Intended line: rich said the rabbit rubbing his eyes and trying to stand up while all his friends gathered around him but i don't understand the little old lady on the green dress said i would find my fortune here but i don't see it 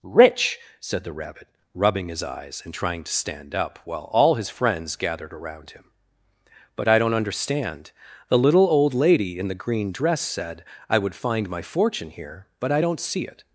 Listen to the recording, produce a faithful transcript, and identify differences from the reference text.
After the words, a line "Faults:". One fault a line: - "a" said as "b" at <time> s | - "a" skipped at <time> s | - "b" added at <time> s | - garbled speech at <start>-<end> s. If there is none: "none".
rich said the rabbit rubbing his eyes and trying to stand up while all his friends gathered around him but i don't understand the little old lady in the green dress said i would find my fortune here but i don't see it
Faults:
- "on" said as "in" at 9.4 s